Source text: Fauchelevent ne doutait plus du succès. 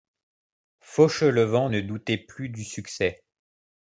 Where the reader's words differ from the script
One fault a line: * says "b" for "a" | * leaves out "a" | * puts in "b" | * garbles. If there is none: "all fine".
all fine